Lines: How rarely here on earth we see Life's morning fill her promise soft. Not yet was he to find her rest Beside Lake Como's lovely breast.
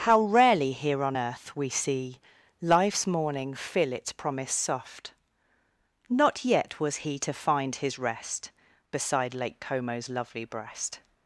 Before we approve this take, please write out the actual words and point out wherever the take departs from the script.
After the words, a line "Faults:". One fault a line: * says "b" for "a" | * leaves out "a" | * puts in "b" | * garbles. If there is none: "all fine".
How rarely here on earth we see Life's morning fill its promise soft. Not yet was he to find his rest Beside Lake Como's lovely breast.
Faults:
* says "its" for "her"
* says "his" for "her"